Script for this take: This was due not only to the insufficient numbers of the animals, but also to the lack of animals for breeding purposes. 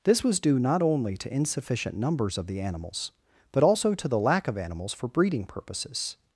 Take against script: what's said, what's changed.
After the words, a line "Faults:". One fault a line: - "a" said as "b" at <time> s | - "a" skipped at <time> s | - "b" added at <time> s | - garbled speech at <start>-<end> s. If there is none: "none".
This was due not only to insufficient numbers of the animals, but also to the lack of animals for breeding purposes.
Faults:
- "the" skipped at 1.3 s